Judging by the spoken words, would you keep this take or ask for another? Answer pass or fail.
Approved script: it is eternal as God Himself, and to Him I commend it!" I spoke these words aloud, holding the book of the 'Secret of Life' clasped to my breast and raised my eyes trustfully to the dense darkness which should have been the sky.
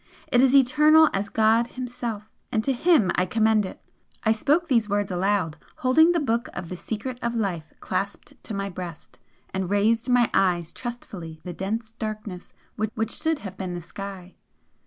fail